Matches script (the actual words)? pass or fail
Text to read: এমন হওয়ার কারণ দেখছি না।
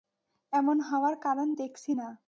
pass